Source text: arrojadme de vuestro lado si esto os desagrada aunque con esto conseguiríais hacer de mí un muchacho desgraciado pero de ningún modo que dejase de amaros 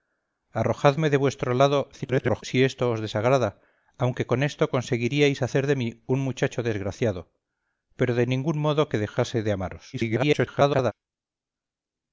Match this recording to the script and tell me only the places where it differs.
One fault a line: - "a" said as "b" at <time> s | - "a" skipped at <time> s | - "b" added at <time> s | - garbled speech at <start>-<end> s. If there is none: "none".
- garbled speech at 1.9-2.4 s
- garbled speech at 9.9-10.9 s